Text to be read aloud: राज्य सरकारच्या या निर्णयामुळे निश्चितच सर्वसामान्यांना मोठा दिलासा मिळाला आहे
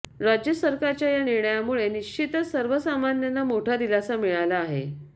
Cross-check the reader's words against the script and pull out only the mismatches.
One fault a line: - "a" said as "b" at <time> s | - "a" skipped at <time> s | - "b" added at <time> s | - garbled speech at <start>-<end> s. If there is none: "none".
none